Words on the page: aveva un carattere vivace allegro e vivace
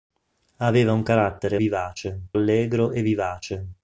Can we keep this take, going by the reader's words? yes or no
yes